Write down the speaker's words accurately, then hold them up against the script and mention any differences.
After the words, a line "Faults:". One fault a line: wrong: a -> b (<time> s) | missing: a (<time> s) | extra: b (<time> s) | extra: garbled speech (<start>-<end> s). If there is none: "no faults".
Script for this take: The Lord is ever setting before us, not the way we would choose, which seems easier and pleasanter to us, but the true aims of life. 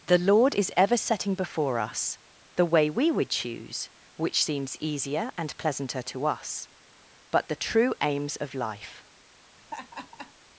The Lord is ever setting before us, the way we would choose, which seems easier and pleasanter to us, but the true aims of life.
Faults:
missing: not (2.2 s)